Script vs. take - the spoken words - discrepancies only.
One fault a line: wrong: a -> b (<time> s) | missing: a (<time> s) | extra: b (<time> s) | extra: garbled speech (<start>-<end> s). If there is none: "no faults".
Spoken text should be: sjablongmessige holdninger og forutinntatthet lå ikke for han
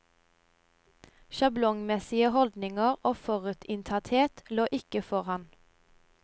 no faults